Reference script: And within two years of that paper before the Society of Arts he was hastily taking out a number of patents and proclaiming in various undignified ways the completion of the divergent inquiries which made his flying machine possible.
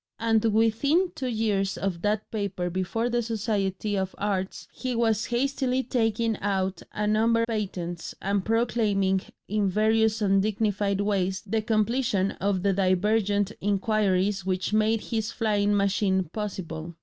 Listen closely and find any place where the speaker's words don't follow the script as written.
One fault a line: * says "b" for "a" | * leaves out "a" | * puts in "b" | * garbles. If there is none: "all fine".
* leaves out "of"